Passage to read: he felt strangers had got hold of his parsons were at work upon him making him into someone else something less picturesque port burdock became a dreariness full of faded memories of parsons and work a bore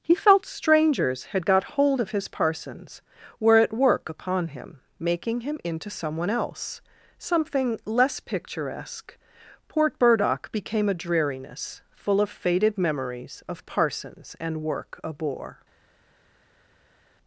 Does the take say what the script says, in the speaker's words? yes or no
yes